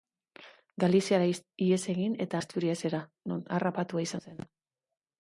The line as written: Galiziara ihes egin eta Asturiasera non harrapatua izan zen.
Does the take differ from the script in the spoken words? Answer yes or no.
no